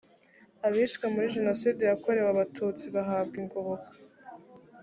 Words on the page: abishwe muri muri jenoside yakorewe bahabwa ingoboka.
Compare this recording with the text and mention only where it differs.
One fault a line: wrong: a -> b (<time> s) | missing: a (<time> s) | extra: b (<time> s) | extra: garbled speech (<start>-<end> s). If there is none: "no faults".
missing: muri (1.3 s)
extra: abatutsi (2.3 s)